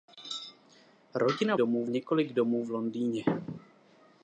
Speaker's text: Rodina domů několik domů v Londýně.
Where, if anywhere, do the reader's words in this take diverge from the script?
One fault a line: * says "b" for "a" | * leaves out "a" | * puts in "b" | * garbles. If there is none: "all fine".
all fine